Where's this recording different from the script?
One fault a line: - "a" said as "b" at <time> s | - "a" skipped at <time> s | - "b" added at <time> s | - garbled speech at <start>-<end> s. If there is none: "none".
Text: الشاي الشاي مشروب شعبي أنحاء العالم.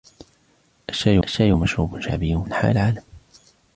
none